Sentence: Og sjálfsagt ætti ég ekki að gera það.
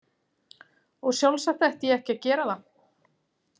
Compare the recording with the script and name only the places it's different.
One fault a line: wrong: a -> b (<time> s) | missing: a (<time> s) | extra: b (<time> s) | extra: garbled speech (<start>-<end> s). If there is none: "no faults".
no faults